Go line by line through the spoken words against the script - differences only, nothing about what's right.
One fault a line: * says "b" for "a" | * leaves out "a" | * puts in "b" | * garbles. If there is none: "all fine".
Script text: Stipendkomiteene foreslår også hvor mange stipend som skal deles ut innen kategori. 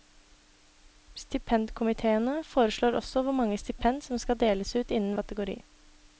all fine